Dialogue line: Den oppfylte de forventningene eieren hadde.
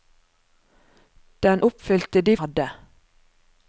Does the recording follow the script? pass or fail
fail